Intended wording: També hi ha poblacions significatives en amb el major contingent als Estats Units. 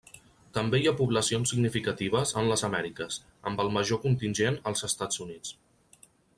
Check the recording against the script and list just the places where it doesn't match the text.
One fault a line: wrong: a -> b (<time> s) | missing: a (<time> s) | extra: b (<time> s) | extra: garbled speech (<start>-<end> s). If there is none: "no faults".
extra: les Amèriques (2.5 s)